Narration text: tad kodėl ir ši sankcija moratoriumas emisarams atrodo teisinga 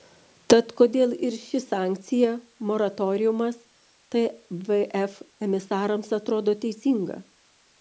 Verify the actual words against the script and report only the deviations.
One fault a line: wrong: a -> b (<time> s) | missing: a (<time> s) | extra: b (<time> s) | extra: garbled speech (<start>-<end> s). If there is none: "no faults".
extra: tvf (4.1 s)